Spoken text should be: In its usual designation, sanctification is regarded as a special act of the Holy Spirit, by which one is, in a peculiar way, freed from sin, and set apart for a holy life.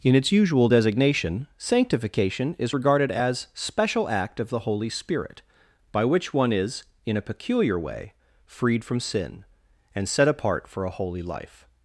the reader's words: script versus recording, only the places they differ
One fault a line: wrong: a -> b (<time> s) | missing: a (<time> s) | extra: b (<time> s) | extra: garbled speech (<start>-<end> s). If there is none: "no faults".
missing: a (3.5 s)